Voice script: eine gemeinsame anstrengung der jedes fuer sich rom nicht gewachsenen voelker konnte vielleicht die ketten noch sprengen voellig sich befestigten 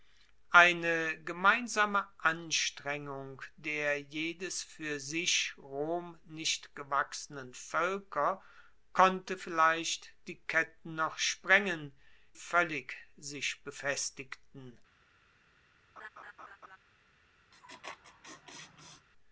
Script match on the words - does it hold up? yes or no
yes